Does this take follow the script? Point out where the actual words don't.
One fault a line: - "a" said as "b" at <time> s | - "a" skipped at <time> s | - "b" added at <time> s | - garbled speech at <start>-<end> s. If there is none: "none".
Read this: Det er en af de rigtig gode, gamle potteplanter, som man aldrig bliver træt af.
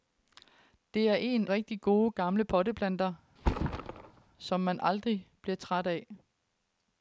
- "af de" skipped at 1.5 s